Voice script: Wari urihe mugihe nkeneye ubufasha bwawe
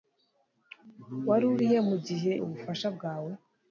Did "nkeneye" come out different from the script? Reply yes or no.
yes